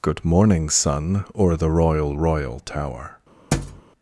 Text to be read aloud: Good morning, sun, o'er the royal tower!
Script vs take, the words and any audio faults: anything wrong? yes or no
yes